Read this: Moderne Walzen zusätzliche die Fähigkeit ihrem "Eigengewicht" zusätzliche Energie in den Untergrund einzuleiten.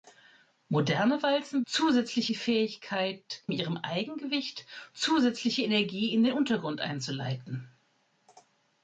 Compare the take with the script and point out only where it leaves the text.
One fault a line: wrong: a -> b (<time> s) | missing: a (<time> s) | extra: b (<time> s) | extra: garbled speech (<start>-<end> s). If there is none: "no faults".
no faults